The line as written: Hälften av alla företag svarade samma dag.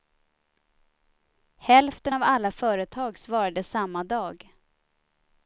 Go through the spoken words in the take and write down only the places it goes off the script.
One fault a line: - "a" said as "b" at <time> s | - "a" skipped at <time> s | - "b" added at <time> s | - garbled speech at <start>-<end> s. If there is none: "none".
none